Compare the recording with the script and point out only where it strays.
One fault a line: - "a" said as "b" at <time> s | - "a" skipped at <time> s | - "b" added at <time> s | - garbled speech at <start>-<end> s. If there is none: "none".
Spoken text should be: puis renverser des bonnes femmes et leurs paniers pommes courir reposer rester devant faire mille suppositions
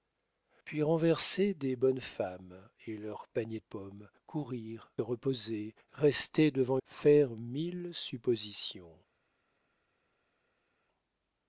none